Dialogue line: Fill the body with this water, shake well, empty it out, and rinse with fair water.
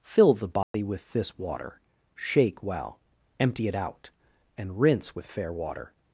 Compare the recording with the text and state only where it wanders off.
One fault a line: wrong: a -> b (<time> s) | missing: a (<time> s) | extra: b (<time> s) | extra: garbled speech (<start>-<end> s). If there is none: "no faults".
no faults